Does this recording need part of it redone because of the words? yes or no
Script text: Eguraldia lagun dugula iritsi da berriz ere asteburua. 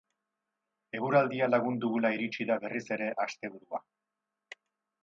no